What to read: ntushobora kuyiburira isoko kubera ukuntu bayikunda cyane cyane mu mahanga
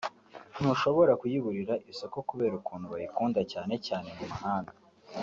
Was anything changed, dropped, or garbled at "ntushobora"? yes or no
no